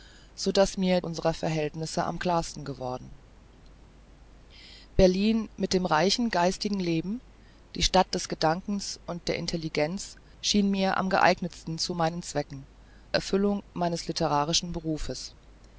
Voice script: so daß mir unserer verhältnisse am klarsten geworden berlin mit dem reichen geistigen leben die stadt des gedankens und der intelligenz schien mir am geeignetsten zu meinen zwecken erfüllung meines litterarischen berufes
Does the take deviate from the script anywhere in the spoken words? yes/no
no